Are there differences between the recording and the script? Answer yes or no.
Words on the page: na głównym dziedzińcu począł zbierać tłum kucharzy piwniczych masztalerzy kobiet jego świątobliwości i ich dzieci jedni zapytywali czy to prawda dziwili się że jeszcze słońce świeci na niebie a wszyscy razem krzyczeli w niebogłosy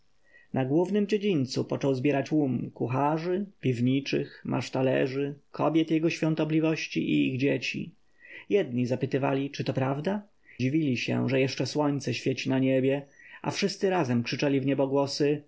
no